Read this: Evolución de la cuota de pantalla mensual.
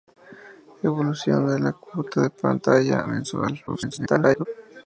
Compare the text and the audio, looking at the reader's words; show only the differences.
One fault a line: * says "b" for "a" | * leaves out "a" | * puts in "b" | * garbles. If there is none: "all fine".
* garbles